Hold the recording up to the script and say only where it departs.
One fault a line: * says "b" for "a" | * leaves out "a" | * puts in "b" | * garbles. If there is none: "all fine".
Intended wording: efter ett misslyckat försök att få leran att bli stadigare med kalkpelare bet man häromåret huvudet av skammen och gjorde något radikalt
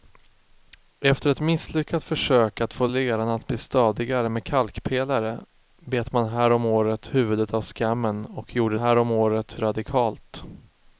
* says "häromåret" for "något"